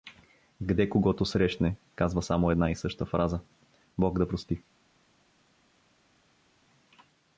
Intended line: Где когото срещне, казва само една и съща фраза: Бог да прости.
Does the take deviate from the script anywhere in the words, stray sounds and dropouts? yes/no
no